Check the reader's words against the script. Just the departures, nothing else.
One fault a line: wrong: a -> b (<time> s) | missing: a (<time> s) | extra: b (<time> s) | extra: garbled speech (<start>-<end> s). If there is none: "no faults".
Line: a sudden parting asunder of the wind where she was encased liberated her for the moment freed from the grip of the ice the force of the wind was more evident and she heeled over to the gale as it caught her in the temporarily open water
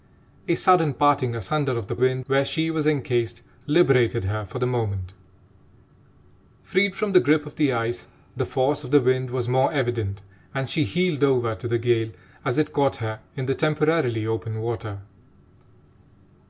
no faults